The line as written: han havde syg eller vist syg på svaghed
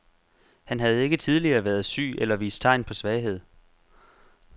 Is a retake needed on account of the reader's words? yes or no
yes